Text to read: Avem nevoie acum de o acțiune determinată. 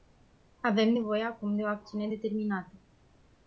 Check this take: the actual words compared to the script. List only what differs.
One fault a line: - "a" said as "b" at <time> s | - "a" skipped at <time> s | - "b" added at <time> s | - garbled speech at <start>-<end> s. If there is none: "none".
none